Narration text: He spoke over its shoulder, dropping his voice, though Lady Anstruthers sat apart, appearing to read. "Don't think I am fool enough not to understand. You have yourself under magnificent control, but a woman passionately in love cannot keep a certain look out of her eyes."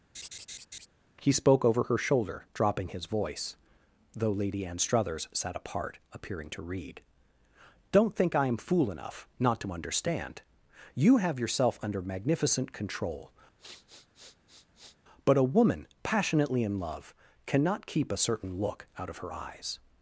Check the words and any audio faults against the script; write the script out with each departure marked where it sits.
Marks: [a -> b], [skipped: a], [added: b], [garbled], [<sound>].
[laugh] He spoke over [its -> her] shoulder, dropping his voice, though Lady Anstruthers sat apart, appearing to read. "Don't think I am fool enough not to understand. You have yourself under magnificent control, [sniff] but a woman passionately in love cannot keep a certain look out of her eyes."